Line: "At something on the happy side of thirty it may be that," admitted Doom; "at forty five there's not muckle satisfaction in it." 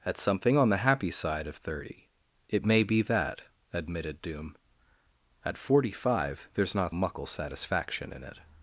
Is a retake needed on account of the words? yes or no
no